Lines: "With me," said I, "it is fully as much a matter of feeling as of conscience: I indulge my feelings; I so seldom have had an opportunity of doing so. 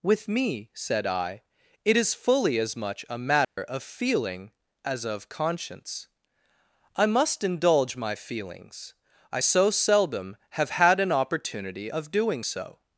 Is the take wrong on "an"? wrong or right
right